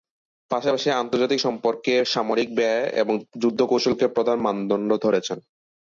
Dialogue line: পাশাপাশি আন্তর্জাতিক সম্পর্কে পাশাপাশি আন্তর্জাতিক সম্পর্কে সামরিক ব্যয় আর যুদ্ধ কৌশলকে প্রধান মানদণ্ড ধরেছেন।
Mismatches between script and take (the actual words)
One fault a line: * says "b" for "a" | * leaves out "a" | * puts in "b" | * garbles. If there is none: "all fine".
* leaves out "পাশাপাশি আন্তর্জাতিক সম্পর্কে"
* says "এবং" for "আর"